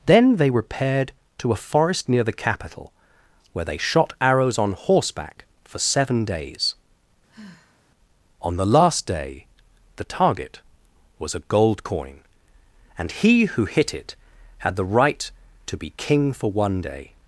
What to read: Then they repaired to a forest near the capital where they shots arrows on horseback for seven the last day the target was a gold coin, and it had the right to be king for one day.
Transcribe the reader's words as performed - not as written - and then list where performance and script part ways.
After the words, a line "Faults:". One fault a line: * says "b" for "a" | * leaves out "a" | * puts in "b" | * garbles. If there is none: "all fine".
Then they repaired to a forest near the capital where they shot arrows on horseback for seven days. On the last day the target was a gold coin, and he who hit it had the right to be king for one day.
Faults:
* says "shot" for "shots"
* puts in "days On"
* puts in "he who hit"